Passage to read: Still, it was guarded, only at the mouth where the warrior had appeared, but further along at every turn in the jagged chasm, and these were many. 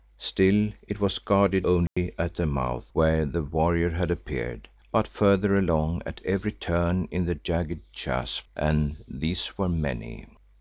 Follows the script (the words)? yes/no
yes